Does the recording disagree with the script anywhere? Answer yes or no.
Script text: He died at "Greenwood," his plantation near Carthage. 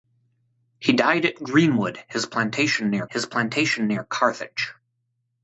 yes